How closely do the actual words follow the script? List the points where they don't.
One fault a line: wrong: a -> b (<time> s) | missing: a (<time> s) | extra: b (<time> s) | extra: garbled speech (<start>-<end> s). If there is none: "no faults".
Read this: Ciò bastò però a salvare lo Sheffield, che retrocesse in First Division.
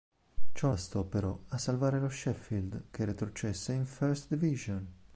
no faults